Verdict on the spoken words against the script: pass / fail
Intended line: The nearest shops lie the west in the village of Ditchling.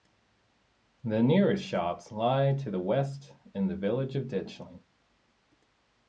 fail